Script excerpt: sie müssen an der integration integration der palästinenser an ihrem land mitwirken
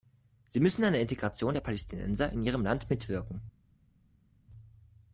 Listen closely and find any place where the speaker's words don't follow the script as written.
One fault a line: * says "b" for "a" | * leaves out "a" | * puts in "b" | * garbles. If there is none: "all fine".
* leaves out "integration"
* says "in" for "an"